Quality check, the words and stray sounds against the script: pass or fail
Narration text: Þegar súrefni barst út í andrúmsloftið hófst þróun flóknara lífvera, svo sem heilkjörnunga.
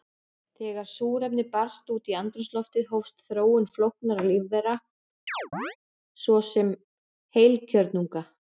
fail